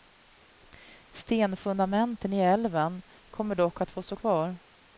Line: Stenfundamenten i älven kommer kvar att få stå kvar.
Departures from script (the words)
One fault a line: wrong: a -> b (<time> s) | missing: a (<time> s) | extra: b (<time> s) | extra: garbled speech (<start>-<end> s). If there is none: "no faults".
wrong: kvar -> dock (3.5 s)